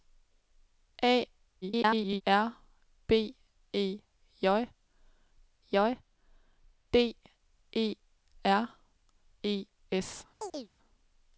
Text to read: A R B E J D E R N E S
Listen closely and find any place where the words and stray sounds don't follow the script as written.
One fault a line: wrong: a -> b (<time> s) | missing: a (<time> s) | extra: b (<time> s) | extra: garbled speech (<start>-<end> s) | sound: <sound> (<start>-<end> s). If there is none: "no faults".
extra: garbled speech (1.6-2.2 s)
extra: J (5.7 s)
missing: N (8.7 s)
sound: chirp (10.4-10.7 s)